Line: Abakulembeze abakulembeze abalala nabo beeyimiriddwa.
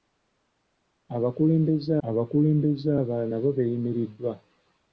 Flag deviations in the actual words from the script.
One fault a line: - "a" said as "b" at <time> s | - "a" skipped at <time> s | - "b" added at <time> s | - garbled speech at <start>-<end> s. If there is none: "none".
none